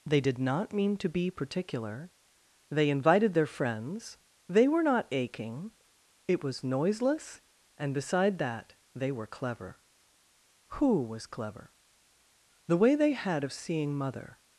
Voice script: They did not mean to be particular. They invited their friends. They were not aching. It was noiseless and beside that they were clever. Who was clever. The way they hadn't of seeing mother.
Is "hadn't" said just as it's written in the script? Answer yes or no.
no